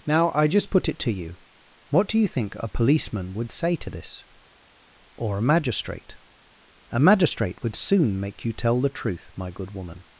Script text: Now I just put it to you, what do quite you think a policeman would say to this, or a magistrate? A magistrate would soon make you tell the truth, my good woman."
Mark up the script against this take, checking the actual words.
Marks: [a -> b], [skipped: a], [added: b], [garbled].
Now I just put it to you, what do [skipped: quite] you think a policeman would say to this, or a magistrate? A magistrate would soon make you tell the truth, my good woman."